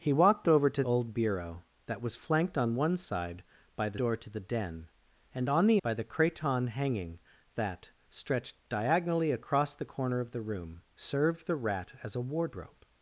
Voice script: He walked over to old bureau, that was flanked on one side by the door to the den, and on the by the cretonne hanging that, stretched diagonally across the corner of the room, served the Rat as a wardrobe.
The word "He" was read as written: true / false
true